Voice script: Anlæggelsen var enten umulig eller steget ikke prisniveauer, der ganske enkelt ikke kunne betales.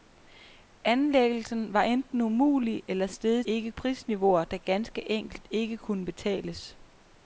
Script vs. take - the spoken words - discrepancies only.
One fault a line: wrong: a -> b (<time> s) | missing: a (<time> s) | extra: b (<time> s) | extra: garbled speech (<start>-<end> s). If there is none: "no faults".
no faults